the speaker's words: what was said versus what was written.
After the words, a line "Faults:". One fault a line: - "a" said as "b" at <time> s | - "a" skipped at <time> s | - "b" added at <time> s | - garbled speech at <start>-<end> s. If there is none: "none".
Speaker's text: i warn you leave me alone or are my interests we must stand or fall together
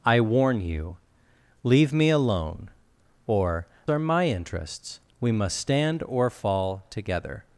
i warn you leave me alone or are my interests we must stand or fall together
Faults:
none